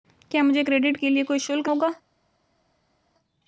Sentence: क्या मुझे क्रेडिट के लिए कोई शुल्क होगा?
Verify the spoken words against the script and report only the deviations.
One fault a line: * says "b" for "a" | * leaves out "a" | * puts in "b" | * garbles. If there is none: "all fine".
all fine